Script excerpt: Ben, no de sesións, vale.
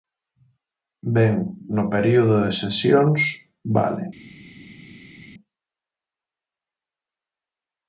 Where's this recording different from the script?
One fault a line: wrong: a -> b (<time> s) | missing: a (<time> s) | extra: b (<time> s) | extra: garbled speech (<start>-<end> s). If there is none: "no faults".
extra: período (1.9 s)